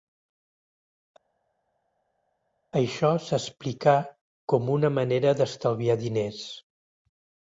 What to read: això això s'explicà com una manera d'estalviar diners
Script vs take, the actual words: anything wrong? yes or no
yes